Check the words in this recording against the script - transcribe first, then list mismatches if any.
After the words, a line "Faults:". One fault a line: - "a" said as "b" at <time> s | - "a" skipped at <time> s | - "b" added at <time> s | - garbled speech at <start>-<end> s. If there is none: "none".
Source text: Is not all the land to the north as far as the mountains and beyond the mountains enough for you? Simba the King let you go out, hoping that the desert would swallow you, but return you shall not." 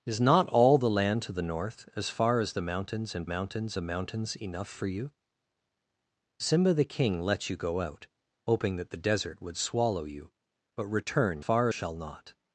Is not all the land to the north as far as the mountains and mountains the mountains enough for you? Simba the King let you go out, hoping that the desert would swallow you, but return far shall not."
Faults:
- "beyond" said as "mountains" at 3.2 s
- "you" said as "far" at 11.4 s